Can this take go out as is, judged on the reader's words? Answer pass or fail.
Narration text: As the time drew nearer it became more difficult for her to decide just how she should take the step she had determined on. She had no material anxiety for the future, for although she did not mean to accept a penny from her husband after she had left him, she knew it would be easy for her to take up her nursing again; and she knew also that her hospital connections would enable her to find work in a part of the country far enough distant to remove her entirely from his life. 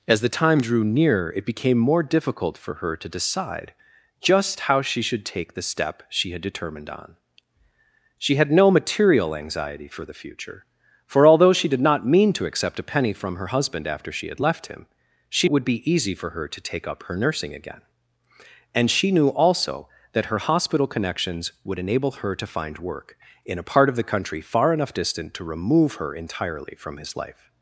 fail